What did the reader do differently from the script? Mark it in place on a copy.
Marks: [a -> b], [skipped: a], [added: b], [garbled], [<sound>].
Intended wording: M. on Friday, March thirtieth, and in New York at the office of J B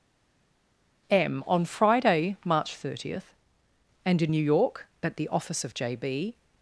M. on Friday, March thirtieth, and in New York at the office of J B